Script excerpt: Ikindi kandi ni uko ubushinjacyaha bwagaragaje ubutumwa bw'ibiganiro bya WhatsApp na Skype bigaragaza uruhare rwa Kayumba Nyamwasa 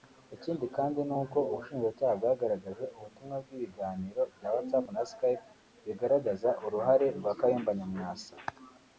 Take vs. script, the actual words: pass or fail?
pass